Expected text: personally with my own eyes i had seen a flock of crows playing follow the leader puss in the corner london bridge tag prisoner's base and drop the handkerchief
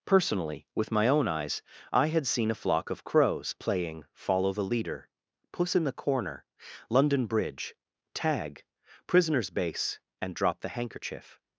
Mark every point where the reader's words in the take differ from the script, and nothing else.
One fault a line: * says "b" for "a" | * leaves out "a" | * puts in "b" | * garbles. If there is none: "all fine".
all fine